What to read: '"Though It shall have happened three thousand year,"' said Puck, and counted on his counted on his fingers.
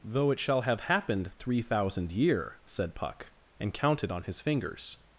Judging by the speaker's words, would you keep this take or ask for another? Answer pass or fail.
fail